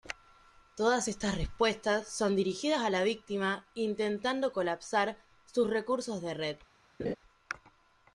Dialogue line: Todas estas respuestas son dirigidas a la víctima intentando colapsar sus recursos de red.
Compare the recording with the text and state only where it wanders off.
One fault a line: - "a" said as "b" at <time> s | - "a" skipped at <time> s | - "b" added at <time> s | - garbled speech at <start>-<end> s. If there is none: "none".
none